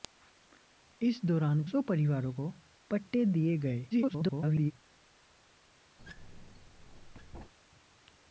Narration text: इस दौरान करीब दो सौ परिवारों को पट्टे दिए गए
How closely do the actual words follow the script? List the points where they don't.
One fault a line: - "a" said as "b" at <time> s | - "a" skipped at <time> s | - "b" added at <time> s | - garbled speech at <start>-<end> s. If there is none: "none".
- "करीब दो" skipped at 1.6 s
- garbled speech at 3.9-4.7 s